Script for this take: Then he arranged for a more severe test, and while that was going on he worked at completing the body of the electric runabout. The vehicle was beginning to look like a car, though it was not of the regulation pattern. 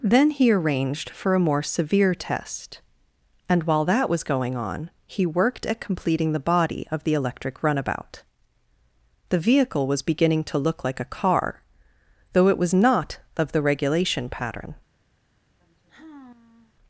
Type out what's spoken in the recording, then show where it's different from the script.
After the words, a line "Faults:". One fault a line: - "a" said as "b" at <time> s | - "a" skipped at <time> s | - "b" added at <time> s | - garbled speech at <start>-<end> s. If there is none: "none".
Then he arranged for a more severe test, and while that was going on he worked at completing the body of the electric runabout. The vehicle was beginning to look like a car, though it was not of the regulation pattern.
Faults:
none